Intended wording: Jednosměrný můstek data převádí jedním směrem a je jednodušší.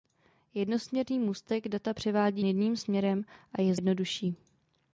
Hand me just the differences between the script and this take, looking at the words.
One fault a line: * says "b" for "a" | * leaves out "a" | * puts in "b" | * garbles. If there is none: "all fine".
all fine